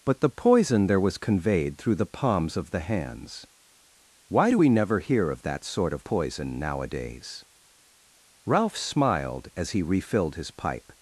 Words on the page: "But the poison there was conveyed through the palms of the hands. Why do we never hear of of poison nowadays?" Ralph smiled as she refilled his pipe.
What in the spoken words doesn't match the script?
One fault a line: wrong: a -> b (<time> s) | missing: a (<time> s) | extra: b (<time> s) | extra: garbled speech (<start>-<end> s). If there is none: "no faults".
extra: that sort (5.4 s)
wrong: she -> he (9.7 s)